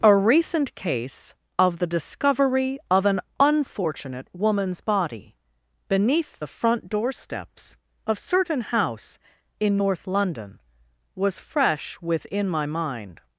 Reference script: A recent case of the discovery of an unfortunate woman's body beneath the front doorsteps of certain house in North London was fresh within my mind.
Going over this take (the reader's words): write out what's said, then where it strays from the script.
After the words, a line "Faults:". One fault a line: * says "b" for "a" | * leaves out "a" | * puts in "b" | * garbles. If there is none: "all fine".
A recent case of the discovery of an unfortunate woman's body beneath the front doorsteps of certain house in North London was fresh within my mind.
Faults:
all fine